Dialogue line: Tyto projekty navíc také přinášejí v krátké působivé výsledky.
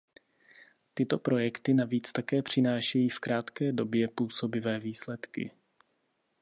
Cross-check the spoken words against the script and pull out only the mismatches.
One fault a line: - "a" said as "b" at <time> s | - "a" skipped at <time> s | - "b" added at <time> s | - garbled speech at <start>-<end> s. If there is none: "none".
- "době" added at 3.7 s